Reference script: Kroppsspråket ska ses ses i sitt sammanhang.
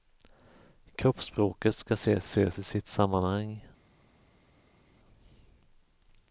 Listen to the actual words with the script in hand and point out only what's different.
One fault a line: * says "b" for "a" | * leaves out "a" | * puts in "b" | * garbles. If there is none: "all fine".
all fine